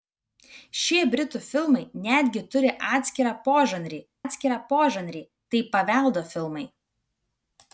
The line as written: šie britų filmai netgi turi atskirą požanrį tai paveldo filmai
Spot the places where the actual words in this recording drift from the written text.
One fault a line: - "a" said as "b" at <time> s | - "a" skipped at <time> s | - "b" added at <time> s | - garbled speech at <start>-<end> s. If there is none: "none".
- "atskirą požanrį" added at 4.3 s